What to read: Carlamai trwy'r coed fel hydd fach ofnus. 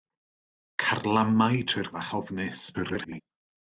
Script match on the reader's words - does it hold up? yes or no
no